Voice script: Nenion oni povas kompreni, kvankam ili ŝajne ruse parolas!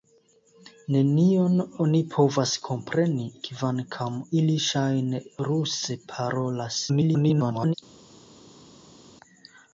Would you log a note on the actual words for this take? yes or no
yes